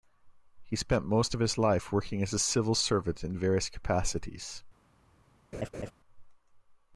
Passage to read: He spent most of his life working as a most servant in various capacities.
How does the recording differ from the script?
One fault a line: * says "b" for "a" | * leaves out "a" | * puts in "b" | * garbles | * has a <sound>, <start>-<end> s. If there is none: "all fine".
* says "civil" for "most"
* has a laugh, 5.5-5.9 s